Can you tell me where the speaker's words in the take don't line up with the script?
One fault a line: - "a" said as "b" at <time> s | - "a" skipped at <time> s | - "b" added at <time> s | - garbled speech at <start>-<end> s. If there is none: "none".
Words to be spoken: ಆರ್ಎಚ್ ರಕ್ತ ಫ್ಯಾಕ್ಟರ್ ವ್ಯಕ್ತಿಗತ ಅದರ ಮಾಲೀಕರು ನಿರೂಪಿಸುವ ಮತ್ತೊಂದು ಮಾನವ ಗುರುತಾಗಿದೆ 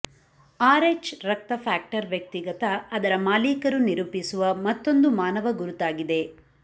none